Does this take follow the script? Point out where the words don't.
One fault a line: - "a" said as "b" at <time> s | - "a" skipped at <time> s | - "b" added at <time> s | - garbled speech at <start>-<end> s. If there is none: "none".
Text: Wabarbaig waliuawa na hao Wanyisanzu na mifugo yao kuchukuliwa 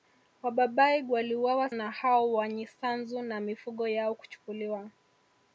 none